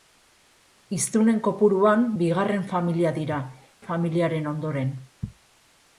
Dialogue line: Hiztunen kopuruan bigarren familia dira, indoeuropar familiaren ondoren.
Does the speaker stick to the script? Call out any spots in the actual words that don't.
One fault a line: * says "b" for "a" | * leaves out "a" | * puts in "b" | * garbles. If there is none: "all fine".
* leaves out "indoeuropar"